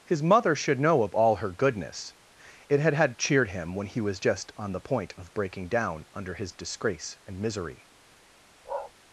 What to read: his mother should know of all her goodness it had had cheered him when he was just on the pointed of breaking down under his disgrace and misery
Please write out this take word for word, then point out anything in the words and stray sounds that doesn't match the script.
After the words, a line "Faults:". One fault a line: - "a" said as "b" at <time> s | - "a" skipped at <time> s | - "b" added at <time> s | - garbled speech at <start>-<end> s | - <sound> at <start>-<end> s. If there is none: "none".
his mother should know of all her goodness it had had cheered him when he was just on the point of breaking down under his disgrace and misery
Faults:
- "pointed" said as "point" at 4.8 s
- bark at 8.6-8.9 s